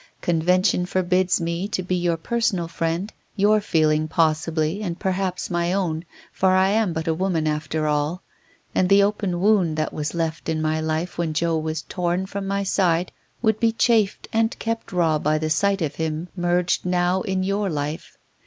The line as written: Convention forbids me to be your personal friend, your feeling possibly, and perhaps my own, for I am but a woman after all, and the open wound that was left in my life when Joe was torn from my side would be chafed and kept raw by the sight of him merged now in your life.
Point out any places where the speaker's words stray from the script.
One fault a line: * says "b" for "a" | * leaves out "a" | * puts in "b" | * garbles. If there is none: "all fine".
all fine